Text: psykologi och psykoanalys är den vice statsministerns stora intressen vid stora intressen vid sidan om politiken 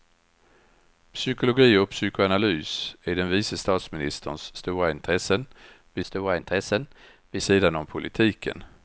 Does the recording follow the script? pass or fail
pass